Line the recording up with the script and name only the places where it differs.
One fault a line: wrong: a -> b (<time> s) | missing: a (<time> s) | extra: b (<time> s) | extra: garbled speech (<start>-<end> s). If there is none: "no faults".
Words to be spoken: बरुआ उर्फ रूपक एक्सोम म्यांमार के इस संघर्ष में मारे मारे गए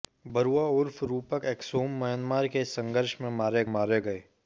no faults